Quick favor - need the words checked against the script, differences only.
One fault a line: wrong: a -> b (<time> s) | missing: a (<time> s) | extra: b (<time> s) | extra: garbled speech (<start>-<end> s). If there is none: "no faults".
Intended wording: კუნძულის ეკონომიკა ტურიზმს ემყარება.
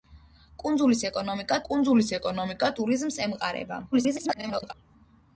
extra: კუნძულის ეკონომიკა (1.7 s)
extra: garbled speech (3.9-4.7 s)